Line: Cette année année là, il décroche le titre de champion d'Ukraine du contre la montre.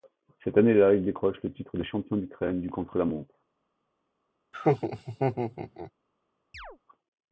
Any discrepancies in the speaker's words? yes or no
yes